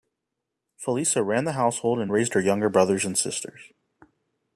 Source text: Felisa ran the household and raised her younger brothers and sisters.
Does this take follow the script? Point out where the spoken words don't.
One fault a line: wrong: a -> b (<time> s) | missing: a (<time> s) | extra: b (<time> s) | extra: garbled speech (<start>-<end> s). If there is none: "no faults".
no faults